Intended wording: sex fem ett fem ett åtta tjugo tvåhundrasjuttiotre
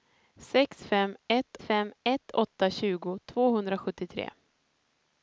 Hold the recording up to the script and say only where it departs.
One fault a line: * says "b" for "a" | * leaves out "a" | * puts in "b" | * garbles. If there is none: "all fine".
all fine